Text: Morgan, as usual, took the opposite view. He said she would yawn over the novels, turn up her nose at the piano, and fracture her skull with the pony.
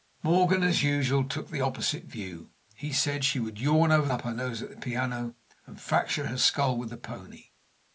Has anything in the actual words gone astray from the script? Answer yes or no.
yes